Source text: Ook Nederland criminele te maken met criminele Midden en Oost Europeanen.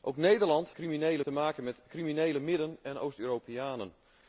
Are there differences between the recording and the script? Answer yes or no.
no